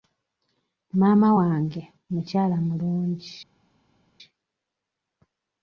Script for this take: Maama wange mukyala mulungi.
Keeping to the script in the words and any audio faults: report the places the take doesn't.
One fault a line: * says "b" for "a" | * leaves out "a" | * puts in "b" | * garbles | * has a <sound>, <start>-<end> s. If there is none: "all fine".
all fine